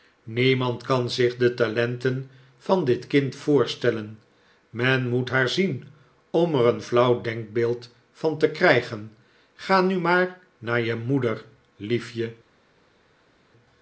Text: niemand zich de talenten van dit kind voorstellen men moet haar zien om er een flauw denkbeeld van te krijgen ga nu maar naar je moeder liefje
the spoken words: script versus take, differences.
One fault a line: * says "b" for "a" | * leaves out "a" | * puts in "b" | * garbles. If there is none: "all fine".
* puts in "kan"